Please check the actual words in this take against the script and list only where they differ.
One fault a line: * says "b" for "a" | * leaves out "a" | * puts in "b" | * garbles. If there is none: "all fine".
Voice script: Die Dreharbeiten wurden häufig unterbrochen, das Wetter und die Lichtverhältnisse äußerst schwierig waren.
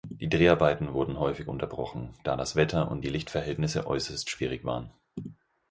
* puts in "da"